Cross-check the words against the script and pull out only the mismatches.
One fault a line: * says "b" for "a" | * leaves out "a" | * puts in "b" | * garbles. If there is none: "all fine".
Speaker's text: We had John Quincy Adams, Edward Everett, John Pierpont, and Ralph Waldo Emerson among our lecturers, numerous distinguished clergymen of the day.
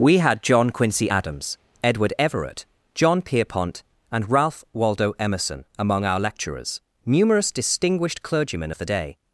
all fine